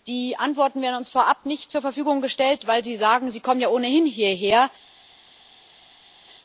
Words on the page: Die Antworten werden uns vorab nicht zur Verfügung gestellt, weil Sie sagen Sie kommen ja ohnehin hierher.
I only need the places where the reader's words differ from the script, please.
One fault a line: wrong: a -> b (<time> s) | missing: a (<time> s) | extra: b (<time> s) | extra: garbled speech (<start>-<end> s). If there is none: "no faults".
no faults